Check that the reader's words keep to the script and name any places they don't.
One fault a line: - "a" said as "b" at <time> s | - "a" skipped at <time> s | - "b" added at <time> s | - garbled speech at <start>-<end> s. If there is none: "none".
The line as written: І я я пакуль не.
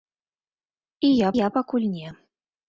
none